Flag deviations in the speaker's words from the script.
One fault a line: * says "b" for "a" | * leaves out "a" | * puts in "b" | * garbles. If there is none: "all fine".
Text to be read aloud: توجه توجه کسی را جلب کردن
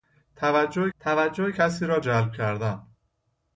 all fine